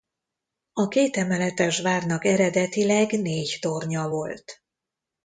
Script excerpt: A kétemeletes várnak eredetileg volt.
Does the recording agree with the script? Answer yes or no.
no